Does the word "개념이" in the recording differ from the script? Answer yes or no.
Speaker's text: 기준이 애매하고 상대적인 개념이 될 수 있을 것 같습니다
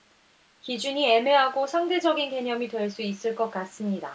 no